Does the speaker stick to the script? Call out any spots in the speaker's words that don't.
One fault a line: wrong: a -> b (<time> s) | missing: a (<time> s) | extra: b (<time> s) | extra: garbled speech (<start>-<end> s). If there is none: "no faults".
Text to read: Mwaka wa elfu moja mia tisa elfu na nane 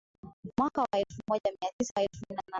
no faults